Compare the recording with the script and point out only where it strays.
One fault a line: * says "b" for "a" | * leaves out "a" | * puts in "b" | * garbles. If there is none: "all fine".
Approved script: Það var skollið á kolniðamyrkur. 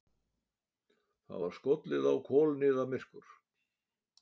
all fine